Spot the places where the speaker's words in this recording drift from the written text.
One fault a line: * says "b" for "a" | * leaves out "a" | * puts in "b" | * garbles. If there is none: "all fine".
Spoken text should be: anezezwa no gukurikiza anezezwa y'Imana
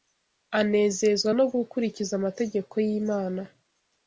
* says "amategeko" for "anezezwa"